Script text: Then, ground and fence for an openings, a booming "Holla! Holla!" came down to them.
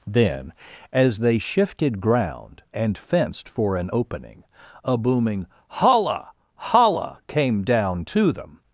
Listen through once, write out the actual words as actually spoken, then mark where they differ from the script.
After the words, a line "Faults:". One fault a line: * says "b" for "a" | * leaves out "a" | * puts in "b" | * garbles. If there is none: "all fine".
Then, as they shifted ground and fenced for an opening, a booming "Holla! Holla!" came down to them.
Faults:
* puts in "as they shifted"
* says "fenced" for "fence"
* says "opening" for "openings"